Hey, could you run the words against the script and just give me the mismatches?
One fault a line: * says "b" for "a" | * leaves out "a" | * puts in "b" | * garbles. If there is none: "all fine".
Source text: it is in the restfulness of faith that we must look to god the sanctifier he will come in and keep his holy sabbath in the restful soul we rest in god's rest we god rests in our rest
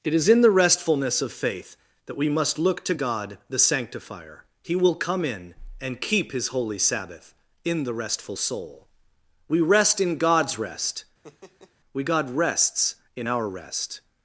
all fine